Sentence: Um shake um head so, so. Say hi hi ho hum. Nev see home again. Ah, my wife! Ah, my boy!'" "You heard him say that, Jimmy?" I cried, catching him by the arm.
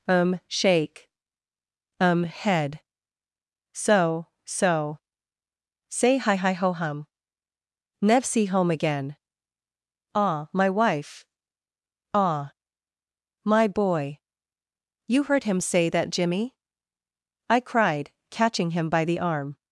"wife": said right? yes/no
yes